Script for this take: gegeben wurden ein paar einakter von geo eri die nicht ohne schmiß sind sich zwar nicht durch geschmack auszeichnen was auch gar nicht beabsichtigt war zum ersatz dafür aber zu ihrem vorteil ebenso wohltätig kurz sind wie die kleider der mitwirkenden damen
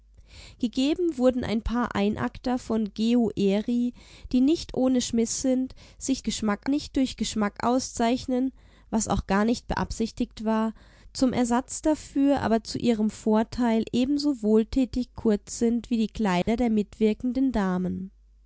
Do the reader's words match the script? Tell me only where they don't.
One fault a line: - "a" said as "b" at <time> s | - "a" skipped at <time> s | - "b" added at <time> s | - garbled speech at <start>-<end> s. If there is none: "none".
- "zwar" said as "geschmack" at 6.2 s